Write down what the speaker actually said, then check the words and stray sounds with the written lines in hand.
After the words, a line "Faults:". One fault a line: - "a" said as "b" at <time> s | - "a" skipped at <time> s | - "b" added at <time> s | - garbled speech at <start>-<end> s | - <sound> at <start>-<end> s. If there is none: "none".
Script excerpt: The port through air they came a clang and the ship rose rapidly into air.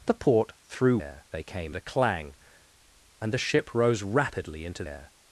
The port through air they came a clang and the ship rose rapidly into air.
Faults:
none